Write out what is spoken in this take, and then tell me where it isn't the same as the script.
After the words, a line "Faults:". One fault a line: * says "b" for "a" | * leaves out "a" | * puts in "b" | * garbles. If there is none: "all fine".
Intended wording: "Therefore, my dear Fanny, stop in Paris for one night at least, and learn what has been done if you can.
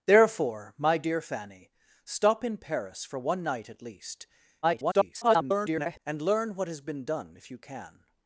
"Therefore, my dear Fanny, stop in Paris for one night at least, [garbled] and learn what has been done if you can.
Faults:
* garbles